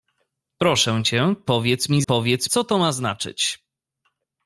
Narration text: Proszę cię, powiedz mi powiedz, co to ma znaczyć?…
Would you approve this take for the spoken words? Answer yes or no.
yes